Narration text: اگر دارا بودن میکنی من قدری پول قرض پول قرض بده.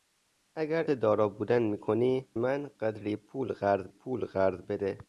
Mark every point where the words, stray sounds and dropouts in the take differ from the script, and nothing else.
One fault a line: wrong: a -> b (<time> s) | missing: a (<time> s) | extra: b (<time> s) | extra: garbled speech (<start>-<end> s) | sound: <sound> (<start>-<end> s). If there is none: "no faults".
no faults